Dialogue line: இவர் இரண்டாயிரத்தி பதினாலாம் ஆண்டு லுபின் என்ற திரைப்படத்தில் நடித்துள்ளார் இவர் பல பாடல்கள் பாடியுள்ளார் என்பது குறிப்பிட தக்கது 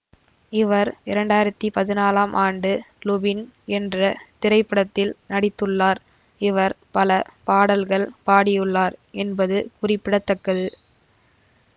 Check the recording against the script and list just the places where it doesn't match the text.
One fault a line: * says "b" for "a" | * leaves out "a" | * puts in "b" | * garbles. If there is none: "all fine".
all fine